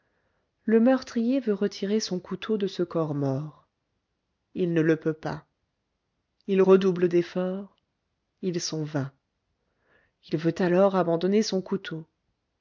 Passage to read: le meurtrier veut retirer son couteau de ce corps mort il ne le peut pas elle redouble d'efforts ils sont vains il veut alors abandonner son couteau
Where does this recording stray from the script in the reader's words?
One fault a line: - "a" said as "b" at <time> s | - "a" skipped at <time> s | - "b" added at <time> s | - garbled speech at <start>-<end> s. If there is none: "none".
- "elle" said as "il" at 6.5 s